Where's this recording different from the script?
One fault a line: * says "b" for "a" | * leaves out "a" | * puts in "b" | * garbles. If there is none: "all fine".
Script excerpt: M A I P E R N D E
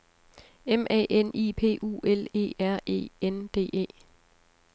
* puts in "N"
* puts in "U L"
* puts in "E"